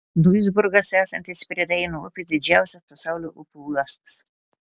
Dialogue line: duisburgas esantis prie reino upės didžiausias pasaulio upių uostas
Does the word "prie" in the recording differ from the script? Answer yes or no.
no